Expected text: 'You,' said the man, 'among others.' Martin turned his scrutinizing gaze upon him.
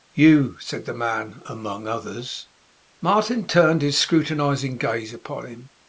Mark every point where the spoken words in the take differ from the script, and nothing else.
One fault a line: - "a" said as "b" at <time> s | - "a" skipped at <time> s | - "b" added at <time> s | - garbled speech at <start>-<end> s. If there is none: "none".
none